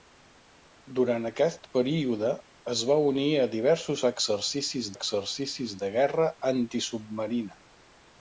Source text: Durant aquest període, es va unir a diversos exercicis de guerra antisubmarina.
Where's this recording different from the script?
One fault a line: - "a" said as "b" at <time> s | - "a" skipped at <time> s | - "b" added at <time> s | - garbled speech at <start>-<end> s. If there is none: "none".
- "exercicis" added at 4.9 s